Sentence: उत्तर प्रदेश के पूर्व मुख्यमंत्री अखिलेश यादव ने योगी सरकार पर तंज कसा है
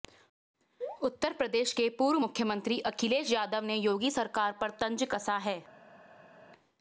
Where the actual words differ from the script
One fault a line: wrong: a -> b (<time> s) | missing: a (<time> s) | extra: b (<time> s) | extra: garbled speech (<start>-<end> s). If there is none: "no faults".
no faults